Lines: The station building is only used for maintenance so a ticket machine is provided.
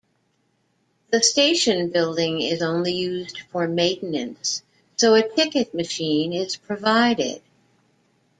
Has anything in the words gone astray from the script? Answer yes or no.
no